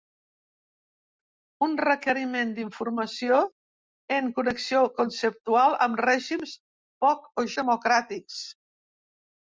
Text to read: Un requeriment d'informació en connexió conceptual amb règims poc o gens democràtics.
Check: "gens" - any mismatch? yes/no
yes